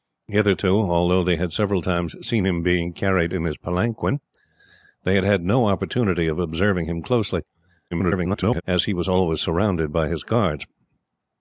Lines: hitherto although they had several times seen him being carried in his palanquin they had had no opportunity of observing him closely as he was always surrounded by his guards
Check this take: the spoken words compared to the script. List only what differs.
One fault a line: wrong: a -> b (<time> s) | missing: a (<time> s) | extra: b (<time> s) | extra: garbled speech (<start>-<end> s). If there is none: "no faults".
extra: garbled speech (7.9-8.6 s)